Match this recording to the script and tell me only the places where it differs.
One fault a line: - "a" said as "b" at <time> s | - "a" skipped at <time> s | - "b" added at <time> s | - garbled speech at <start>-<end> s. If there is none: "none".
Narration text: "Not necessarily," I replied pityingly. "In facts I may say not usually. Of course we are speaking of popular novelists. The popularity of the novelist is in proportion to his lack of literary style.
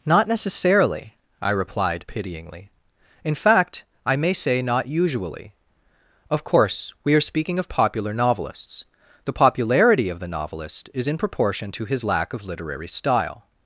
- "facts" said as "fact" at 3.4 s